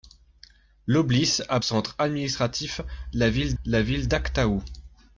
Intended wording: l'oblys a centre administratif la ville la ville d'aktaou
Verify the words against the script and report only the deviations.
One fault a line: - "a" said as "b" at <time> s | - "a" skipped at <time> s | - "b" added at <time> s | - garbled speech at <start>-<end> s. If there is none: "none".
none